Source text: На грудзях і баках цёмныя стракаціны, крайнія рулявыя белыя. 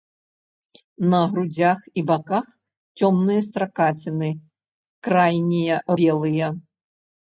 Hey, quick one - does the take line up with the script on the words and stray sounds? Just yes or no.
no